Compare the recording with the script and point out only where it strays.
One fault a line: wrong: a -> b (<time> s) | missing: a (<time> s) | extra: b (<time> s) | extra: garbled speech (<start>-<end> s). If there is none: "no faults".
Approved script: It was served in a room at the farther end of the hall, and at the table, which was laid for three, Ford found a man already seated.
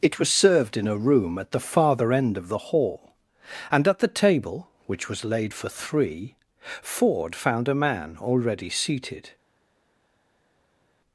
no faults